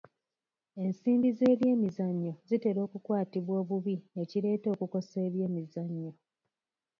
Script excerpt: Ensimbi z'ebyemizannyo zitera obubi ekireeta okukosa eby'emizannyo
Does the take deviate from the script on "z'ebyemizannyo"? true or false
false